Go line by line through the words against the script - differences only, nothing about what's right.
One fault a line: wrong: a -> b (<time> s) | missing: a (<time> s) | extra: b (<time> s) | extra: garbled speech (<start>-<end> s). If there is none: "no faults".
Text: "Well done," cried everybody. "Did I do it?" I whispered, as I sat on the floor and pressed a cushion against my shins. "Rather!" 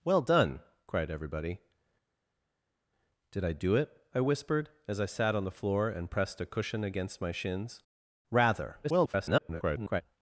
extra: garbled speech (8.8-10.0 s)